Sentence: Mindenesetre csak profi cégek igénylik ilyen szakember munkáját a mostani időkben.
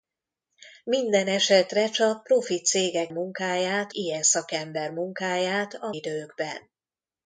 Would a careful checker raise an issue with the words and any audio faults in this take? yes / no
yes